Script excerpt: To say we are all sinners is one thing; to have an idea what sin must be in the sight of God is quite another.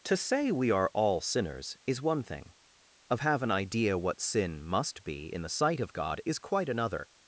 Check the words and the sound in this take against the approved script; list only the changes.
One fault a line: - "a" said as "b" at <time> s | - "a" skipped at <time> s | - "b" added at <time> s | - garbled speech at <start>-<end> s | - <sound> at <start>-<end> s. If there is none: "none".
- "to" said as "of" at 3.1 s